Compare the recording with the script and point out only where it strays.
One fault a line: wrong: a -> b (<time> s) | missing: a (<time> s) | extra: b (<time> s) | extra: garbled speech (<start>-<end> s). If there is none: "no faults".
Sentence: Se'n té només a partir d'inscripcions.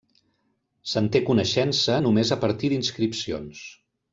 extra: coneixença (1.3 s)